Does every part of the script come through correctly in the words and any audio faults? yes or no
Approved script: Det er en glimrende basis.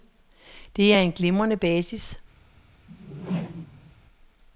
no